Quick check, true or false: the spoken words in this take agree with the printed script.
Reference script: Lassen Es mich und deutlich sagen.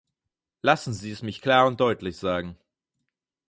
false